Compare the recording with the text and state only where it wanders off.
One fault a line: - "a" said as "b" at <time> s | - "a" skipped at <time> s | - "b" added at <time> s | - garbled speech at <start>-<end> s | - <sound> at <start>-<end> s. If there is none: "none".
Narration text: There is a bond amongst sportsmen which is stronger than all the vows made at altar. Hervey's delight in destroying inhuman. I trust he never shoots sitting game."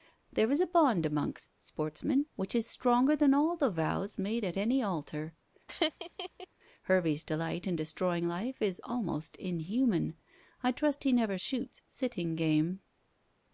- "any" added at 4.6 s
- laugh at 5.7-6.5 s
- "life is almost" added at 8.3 s